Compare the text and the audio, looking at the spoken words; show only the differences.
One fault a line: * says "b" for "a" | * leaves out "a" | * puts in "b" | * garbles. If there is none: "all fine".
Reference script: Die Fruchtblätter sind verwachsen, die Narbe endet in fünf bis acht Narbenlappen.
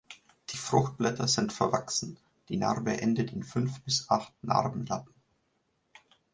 all fine